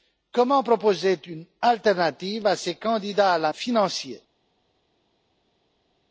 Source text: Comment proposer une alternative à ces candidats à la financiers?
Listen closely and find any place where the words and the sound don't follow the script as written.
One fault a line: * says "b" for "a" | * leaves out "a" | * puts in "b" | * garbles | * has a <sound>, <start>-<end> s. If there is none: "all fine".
all fine